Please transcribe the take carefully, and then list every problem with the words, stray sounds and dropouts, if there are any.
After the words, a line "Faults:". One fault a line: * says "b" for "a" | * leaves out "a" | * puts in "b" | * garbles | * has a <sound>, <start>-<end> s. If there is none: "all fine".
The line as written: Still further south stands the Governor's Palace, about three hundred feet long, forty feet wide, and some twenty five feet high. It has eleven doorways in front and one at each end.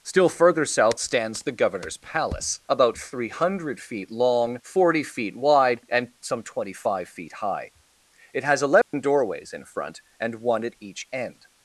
Still further south stands the Governor's Palace, about three hundred feet long, forty feet wide, and some twenty five feet high. It has eleven doorways in front and one at each end.
Faults:
* has a dropout, 8.8-8.9 s